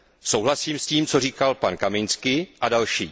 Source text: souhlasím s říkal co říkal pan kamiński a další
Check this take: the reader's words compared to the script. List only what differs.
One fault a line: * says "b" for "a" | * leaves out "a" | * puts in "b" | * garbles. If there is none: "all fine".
* says "tím" for "říkal"